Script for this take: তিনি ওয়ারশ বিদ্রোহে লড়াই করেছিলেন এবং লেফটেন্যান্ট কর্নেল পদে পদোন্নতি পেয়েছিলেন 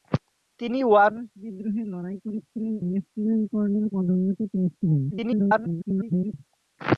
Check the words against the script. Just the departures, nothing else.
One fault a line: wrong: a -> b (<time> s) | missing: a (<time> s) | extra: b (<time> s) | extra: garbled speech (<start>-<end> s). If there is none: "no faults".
missing: এবং (2.7 s)
missing: পদে (3.9 s)
extra: garbled speech (5.1-6.3 s)